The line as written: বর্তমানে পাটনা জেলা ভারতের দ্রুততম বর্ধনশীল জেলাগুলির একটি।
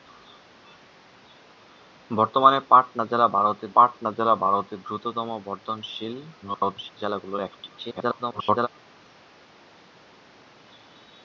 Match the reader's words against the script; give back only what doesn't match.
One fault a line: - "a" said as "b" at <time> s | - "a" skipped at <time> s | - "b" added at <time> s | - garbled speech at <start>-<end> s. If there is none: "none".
- "পাটনা জেলা ভারতের" added at 3.7 s
- garbled speech at 6.4-6.9 s
- garbled speech at 7.8-8.7 s